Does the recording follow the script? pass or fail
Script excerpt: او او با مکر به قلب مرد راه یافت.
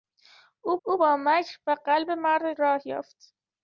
pass